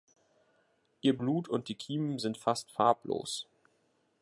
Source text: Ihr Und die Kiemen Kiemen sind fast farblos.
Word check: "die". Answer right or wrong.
right